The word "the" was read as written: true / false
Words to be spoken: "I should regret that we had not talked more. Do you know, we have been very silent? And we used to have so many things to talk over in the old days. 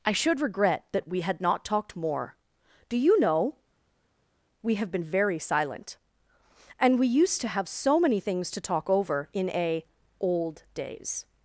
false